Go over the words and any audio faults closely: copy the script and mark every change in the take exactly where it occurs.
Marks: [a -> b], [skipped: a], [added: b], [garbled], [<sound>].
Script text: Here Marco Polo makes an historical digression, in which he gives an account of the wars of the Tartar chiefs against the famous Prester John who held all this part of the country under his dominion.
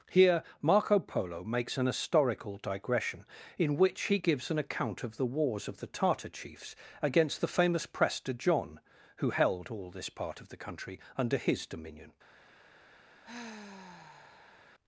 Here Marco Polo makes an historical digression, in which he gives an account of the wars of the Tartar chiefs against the famous Prester John who held all this part of the country under his dominion. [sigh]